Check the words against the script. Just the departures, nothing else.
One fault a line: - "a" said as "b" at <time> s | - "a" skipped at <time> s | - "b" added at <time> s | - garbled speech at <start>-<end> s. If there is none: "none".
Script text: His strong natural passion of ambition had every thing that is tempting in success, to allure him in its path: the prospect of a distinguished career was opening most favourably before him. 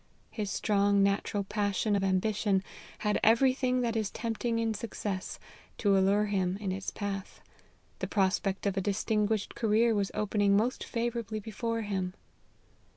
none